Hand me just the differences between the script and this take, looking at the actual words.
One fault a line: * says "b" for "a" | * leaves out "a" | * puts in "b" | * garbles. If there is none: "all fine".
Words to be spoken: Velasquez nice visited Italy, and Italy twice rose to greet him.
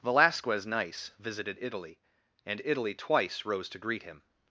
all fine